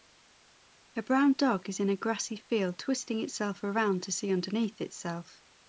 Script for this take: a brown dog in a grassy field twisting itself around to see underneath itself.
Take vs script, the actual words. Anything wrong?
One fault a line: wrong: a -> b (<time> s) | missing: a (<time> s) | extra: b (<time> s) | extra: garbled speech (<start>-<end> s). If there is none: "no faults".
extra: is (1.7 s)